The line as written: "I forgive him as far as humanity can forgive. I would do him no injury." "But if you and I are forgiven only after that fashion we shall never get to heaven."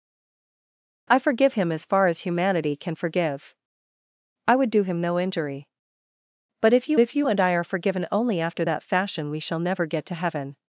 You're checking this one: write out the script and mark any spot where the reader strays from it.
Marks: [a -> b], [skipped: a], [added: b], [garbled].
"I forgive him as far as humanity can forgive. I would do him no injury." "But if you [added: if you] and I are forgiven only after that fashion we shall never get to heaven."